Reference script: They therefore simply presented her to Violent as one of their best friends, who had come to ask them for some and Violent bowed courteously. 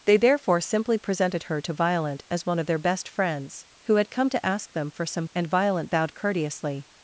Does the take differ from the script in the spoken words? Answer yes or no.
no